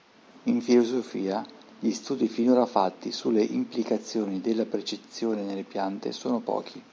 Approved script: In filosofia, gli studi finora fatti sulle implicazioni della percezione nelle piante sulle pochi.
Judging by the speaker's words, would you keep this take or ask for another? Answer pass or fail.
fail